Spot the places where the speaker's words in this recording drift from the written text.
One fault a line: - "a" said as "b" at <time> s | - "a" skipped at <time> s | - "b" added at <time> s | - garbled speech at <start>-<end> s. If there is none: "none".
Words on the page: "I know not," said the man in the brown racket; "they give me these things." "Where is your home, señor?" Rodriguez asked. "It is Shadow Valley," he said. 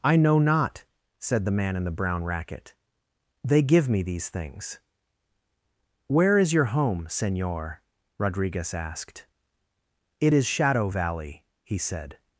none